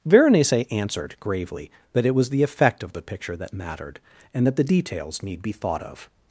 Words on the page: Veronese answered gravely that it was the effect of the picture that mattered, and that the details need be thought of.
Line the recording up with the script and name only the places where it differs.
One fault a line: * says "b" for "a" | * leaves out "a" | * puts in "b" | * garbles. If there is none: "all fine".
all fine